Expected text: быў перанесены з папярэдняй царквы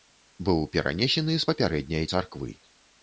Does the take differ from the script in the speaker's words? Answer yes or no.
no